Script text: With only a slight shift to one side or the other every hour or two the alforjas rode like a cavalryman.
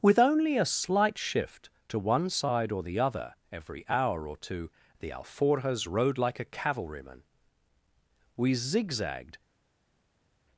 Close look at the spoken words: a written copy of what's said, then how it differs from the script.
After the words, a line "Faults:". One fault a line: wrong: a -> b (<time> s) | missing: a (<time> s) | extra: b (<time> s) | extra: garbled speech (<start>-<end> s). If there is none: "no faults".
With only a slight shift to one side or the other every hour or two the alforjas rode like a cavalryman. We zigzagged
Faults:
extra: We zigzagged (8.4 s)